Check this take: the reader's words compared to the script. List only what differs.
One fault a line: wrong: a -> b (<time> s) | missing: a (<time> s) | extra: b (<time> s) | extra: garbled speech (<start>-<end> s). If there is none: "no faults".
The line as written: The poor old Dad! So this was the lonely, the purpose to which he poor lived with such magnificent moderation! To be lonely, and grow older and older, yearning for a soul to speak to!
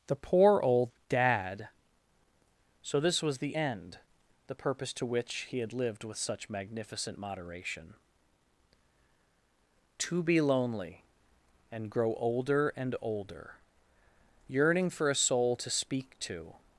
wrong: lonely -> end (3.5 s)
wrong: poor -> had (5.6 s)